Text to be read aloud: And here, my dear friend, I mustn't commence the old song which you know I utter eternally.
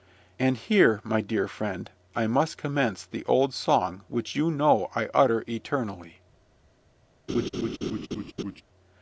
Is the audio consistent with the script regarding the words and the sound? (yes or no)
no